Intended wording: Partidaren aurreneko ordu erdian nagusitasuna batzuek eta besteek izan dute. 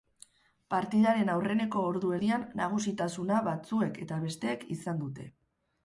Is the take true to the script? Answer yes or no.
yes